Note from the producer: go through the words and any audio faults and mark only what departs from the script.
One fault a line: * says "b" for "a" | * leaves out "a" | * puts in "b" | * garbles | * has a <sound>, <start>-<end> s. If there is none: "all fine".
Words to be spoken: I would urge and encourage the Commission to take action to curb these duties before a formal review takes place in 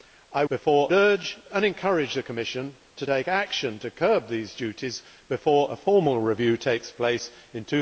* says "before" for "would"